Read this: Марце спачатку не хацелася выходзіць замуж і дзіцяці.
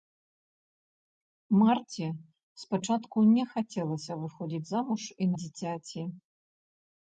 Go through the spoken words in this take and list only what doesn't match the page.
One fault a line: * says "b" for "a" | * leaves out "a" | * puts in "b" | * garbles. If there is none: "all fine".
all fine